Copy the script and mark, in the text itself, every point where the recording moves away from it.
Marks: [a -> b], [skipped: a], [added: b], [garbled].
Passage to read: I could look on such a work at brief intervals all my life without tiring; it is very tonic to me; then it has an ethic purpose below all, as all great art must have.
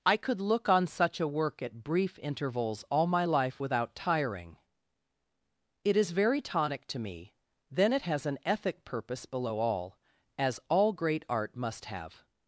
I could look on such a work at brief intervals all my life without tiring; it is very tonic to me; then it has an ethic purpose below all, as all great art must have.